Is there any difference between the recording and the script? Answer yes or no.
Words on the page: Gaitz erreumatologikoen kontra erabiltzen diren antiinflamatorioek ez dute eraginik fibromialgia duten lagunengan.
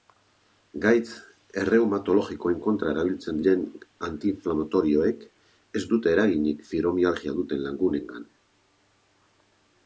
no